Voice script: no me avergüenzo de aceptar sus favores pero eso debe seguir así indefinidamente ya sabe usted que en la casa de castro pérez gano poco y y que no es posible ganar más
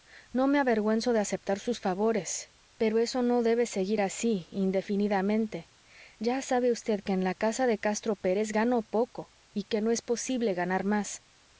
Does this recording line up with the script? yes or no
no